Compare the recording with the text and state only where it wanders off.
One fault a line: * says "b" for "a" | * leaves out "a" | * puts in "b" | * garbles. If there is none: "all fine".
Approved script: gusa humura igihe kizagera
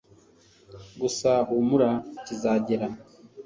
* leaves out "igihe"